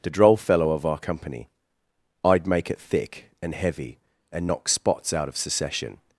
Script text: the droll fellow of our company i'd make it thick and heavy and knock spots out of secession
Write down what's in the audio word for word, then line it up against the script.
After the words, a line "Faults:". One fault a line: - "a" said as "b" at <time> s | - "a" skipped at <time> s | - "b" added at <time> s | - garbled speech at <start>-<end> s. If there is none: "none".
the droll fellow of our company i'd make it thick and heavy and knock spots out of secession
Faults:
none